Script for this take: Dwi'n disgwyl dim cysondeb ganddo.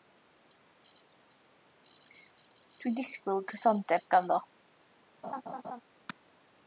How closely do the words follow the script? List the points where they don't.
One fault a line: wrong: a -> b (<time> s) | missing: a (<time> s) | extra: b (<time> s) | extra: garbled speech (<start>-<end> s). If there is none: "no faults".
missing: dim (3.5 s)